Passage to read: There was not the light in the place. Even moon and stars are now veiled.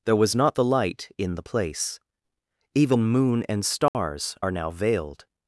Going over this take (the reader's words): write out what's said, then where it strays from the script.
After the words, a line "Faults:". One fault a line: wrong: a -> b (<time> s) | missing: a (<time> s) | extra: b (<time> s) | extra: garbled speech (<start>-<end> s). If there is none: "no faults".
There was not the light in the place. Even moon and stars are now veiled.
Faults:
no faults